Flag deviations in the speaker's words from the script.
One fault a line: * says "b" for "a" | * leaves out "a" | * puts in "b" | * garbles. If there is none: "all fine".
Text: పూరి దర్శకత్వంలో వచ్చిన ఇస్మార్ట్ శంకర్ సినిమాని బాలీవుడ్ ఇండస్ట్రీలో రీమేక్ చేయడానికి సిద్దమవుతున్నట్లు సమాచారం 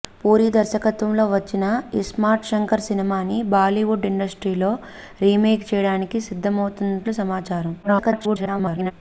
* garbles